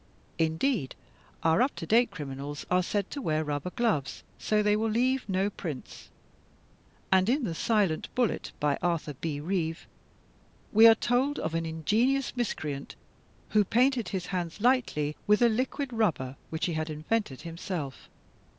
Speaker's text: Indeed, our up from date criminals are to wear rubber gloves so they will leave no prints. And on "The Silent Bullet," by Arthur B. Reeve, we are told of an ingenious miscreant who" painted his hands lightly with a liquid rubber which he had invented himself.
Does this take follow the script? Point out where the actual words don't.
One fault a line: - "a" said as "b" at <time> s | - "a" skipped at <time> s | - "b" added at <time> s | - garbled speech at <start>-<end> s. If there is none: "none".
- "from" said as "to" at 1.8 s
- "said" added at 2.8 s
- "on" said as "in" at 7.3 s